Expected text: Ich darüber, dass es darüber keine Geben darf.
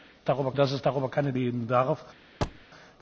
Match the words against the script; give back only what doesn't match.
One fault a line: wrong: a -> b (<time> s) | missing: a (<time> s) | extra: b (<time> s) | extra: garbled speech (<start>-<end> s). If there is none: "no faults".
no faults